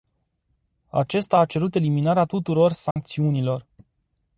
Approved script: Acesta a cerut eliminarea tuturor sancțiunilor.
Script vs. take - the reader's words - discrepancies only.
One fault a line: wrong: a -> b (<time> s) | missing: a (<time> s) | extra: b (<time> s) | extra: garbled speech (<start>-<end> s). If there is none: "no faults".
no faults